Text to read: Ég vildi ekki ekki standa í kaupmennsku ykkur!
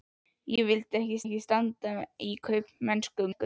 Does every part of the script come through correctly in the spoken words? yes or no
yes